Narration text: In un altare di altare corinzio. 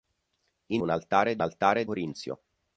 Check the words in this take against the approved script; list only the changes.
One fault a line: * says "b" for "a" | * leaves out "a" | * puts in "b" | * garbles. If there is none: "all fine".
all fine